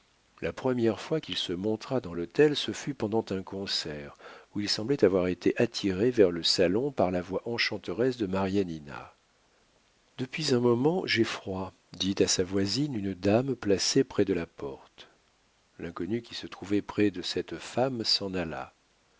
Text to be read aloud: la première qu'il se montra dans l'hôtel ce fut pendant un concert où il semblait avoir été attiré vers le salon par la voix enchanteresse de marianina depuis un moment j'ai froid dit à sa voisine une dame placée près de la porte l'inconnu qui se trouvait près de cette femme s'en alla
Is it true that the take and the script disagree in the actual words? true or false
true